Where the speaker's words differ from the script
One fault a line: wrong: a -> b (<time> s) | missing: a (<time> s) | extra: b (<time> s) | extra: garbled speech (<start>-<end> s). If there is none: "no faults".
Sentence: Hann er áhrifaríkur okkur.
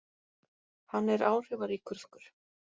no faults